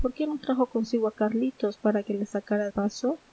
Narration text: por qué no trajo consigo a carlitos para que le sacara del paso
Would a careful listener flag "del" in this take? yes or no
yes